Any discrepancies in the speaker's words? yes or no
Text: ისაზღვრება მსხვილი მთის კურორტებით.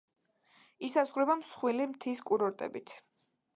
no